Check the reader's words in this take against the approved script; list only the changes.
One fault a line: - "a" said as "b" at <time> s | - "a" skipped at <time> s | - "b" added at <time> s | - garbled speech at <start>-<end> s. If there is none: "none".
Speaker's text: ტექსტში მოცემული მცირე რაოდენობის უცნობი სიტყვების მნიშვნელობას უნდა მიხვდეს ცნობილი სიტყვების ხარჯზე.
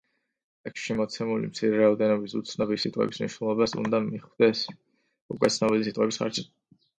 - "უკვე" added at 5.4 s